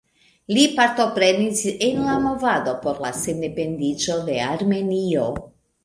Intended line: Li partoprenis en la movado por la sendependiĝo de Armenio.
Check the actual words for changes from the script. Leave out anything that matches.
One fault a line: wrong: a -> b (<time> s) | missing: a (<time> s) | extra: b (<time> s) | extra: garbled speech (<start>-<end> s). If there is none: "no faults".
no faults